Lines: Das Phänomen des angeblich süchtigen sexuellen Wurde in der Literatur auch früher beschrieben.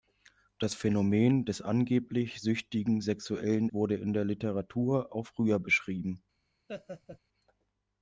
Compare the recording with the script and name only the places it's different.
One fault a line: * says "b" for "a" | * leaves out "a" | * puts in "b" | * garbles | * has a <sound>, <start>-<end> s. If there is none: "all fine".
* has a laugh, 6.7-7.2 s